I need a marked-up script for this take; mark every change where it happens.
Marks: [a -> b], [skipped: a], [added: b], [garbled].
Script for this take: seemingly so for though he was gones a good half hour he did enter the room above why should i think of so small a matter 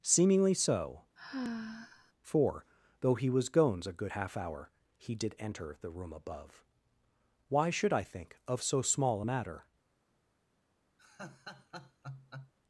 seemingly so for though he was gones a good half hour he did enter the room above why should i think of so small a matter